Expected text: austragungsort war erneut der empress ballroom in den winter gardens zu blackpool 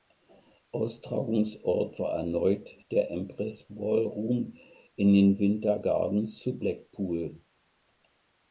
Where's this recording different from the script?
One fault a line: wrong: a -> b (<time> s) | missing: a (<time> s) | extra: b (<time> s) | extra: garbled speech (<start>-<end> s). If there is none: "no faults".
no faults